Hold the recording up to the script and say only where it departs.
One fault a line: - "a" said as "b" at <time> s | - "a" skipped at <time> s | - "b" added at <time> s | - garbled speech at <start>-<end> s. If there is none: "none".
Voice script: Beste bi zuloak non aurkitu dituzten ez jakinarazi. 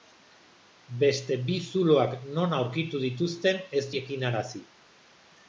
none